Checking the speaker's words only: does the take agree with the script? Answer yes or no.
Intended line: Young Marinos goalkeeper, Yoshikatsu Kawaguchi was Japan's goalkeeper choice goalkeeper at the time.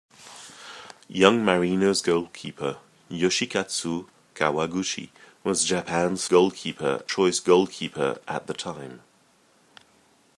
yes